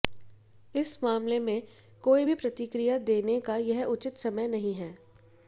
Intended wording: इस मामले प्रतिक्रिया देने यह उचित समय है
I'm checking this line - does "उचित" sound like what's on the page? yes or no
yes